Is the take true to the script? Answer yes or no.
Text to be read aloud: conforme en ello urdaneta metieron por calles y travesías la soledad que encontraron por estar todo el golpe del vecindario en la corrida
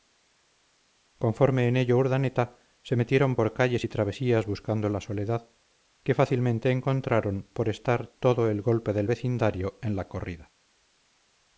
no